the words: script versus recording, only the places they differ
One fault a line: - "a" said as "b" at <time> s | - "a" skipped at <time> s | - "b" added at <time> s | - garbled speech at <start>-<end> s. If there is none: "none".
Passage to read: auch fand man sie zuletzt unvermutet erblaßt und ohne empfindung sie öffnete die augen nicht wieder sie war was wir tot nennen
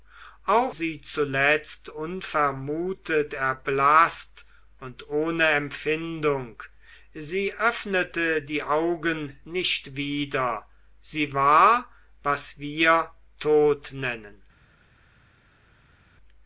- "fand man" skipped at 0.8 s